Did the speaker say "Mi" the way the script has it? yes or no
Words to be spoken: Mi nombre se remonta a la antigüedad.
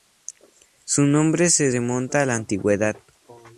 no